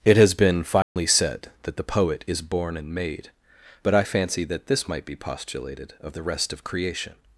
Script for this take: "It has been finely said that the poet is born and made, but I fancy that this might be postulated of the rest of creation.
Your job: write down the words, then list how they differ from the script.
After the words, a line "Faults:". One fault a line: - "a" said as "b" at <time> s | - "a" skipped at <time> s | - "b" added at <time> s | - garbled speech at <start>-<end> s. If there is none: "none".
"It has been finely said that the poet is born and made, but I fancy that this might be postulated of the rest of creation.
Faults:
none